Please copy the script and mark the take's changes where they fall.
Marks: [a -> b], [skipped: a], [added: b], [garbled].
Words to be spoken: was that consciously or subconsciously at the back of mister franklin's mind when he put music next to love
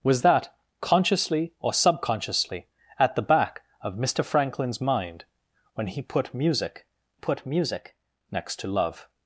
was that consciously or subconsciously at the back of mister franklin's mind when he put music [added: put music] next to love